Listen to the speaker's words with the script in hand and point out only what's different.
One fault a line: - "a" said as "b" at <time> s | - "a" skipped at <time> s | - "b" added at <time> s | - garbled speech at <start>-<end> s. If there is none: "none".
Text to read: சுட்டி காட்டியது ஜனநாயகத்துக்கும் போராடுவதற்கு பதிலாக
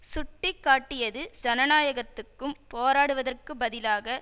none